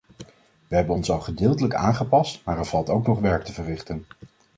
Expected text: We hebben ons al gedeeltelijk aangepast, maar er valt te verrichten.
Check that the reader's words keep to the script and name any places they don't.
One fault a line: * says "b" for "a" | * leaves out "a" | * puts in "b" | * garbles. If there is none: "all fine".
* puts in "ook nog werk"